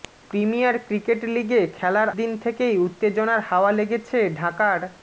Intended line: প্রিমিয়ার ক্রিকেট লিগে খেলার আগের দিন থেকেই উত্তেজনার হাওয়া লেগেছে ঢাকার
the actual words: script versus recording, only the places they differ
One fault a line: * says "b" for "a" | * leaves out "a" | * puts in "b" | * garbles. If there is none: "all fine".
* leaves out "আগের"